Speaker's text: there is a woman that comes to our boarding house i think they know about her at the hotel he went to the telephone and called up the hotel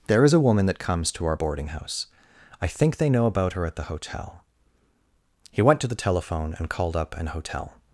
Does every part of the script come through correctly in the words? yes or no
no